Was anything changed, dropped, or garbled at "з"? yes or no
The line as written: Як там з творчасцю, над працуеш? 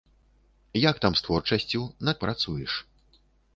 no